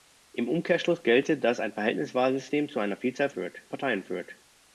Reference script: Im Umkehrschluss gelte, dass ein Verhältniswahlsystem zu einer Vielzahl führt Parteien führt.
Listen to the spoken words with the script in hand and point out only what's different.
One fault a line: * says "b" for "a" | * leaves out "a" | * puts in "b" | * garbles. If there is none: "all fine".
all fine